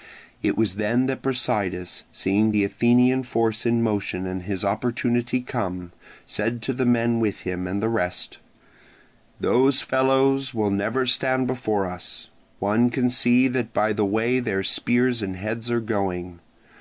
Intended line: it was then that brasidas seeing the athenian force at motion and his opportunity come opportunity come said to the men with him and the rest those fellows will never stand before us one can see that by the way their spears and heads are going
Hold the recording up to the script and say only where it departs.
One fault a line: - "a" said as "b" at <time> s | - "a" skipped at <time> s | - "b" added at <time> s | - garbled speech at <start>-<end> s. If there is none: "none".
- "at" said as "in" at 3.7 s
- "opportunity come" skipped at 5.9 s